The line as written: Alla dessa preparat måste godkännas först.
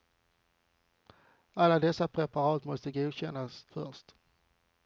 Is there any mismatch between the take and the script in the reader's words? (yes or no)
no